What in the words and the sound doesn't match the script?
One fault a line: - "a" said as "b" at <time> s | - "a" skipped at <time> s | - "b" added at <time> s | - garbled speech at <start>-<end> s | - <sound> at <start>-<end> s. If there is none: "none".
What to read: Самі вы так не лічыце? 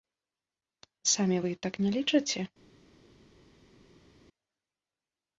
none